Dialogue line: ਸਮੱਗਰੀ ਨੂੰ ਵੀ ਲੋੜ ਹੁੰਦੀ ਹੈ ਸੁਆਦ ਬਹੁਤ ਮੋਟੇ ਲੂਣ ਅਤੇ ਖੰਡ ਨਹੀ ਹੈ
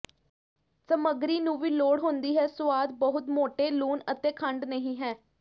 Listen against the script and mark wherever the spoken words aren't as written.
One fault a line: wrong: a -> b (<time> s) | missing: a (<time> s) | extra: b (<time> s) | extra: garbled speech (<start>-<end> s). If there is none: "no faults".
no faults